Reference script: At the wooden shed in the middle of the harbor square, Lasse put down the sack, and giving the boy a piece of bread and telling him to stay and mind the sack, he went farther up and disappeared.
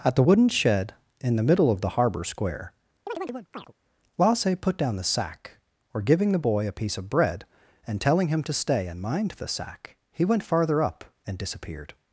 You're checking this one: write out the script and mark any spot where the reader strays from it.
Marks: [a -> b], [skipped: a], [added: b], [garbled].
At the wooden shed in the middle of the harbor square, Lasse put down the sack, [and -> or] giving the boy a piece of bread and telling him to stay and mind the sack, he went farther up and disappeared.